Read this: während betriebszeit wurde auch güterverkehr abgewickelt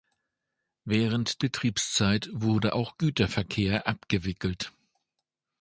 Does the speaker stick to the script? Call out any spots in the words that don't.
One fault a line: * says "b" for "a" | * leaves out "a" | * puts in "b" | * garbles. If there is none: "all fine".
all fine